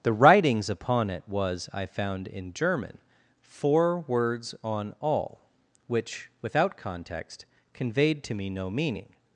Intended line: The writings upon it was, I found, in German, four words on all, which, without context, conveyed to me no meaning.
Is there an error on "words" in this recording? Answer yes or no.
no